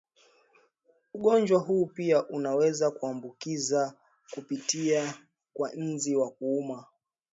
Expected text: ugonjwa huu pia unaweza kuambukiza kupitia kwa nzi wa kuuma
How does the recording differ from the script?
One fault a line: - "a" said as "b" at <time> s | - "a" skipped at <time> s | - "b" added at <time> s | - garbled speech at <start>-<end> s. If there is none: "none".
none